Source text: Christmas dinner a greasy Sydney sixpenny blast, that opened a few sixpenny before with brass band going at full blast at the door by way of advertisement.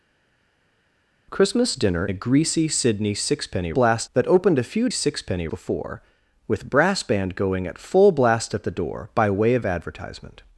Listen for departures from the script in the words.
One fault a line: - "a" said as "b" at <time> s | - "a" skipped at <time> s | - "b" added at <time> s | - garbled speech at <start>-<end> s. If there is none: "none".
none